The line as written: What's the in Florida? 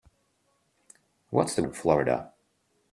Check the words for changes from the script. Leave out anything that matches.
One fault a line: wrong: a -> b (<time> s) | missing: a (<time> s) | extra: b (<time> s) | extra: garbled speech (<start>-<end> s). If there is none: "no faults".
no faults